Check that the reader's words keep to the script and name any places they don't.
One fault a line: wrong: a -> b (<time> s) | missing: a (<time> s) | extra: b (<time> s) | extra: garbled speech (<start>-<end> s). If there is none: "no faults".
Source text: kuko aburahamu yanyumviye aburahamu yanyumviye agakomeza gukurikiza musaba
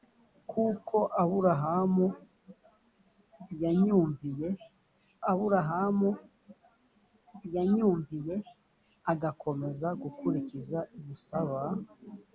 no faults